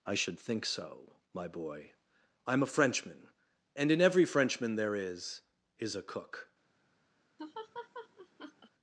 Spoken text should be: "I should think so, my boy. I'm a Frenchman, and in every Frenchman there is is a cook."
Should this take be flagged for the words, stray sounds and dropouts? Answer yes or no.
yes